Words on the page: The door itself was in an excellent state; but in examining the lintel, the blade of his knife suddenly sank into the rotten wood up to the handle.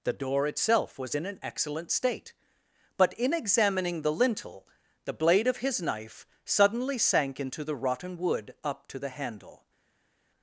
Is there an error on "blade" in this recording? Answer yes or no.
no